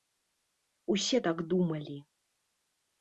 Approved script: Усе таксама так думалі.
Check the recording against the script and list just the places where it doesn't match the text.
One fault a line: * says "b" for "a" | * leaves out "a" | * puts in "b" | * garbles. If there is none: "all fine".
* leaves out "таксама"